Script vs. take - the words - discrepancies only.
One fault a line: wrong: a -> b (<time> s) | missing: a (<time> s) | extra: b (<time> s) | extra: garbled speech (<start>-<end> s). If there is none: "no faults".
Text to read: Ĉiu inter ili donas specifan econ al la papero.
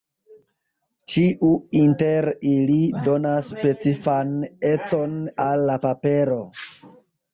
no faults